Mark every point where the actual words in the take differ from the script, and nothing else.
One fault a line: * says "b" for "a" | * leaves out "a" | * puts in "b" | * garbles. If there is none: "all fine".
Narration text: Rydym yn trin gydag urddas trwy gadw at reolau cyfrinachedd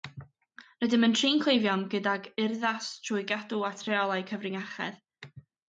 * puts in "cleifion"